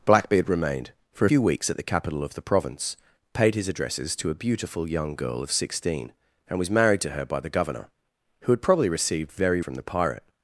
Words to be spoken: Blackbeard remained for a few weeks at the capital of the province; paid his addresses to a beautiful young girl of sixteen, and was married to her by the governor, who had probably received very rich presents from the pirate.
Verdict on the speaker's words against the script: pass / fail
fail